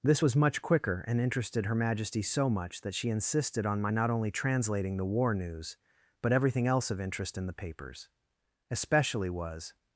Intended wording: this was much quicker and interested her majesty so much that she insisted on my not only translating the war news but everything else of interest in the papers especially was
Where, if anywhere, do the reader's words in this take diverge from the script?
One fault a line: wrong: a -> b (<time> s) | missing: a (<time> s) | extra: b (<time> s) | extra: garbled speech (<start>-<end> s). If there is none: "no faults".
no faults